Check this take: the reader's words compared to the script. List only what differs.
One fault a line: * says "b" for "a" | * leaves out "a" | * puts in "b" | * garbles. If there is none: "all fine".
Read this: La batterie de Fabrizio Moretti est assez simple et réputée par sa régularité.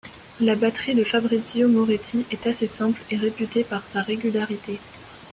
all fine